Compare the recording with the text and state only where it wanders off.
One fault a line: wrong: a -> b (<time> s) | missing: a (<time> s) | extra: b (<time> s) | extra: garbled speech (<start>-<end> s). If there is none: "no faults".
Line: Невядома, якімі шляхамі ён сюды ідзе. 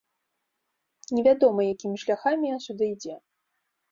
no faults